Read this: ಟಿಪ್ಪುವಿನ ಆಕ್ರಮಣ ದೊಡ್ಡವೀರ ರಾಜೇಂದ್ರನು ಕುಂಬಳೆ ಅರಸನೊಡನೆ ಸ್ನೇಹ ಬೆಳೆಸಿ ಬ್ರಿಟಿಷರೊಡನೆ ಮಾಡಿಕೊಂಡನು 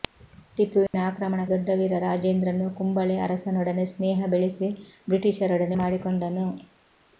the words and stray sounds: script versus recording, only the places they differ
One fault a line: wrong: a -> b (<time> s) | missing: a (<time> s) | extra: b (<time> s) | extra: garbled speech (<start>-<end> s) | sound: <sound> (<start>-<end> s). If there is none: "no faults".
sound: dropout (0.9-0.9 s)